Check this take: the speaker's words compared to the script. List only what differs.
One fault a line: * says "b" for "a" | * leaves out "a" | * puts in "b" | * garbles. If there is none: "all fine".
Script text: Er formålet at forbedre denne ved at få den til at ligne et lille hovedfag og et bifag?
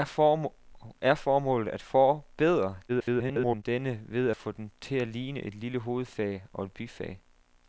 * garbles